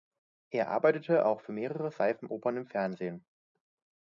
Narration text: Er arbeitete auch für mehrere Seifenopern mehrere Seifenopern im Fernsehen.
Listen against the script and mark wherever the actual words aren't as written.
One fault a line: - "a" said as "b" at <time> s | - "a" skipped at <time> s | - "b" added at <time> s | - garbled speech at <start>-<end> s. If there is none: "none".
- "mehrere Seifenopern" skipped at 2.6 s